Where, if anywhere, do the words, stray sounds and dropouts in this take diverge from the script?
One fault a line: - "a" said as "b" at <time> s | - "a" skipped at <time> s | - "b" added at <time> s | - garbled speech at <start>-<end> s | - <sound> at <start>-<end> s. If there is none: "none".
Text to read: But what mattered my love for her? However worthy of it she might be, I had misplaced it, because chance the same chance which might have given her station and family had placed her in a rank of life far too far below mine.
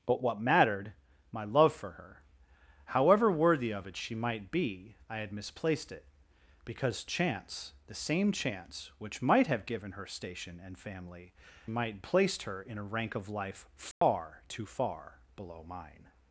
- "had" said as "might" at 11.7 s
- dropout at 13.9-14.0 s